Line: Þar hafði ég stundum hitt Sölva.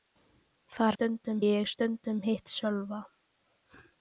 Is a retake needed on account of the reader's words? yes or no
yes